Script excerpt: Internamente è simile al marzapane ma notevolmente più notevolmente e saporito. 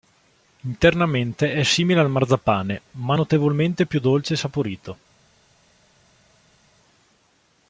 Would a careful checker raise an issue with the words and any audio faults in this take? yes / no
yes